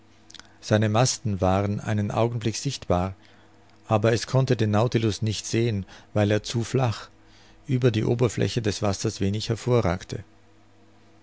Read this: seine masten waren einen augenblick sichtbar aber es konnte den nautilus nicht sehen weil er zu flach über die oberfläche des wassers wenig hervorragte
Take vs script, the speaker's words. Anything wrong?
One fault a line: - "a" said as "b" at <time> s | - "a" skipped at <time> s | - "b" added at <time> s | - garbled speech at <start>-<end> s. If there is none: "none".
none